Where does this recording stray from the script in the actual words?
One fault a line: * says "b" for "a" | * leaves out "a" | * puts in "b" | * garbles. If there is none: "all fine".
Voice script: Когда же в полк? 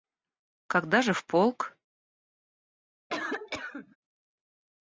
all fine